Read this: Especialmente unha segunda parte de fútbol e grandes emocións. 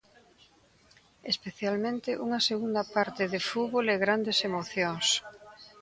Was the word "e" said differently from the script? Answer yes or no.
no